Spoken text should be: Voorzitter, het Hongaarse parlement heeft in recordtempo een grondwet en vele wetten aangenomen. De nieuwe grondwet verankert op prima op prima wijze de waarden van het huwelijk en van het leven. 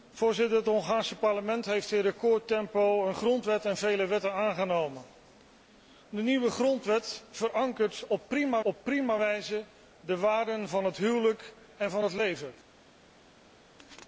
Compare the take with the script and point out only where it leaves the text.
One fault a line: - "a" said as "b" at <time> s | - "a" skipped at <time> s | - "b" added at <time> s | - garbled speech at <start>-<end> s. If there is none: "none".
none